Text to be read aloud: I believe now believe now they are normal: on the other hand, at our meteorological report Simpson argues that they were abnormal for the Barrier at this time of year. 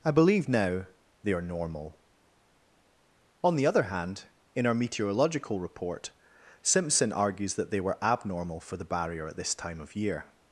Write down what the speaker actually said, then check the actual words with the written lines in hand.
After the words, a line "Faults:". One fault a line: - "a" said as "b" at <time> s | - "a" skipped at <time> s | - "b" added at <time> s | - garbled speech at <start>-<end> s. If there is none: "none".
I believe now they are normal: on the other hand, in our meteorological report Simpson argues that they were abnormal for the Barrier at this time of year.
Faults:
- "believe now" skipped at 0.9 s
- "at" said as "in" at 4.5 s